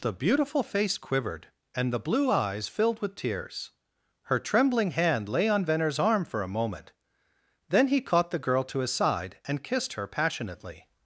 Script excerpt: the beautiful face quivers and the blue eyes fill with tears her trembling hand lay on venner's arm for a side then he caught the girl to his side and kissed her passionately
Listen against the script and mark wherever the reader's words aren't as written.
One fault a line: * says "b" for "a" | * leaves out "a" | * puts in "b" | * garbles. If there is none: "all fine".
* says "quivered" for "quivers"
* says "filled" for "fill"
* says "moment" for "side"